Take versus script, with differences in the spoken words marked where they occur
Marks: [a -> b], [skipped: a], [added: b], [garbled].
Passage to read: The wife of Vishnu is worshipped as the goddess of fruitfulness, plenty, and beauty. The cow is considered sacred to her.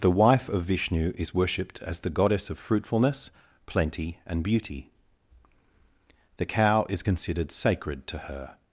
The wife of Vishnu is worshipped as the goddess of fruitfulness, plenty, and beauty. The cow is considered sacred to her.